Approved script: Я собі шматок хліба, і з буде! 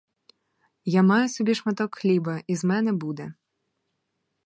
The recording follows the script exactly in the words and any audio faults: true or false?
false